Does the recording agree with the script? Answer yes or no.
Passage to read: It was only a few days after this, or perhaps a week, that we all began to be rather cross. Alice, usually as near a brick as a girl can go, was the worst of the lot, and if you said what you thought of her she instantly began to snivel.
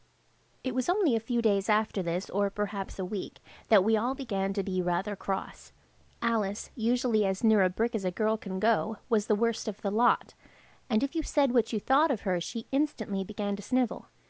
yes